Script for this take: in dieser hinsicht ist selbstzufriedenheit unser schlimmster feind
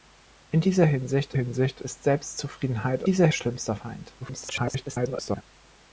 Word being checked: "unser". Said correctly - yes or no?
no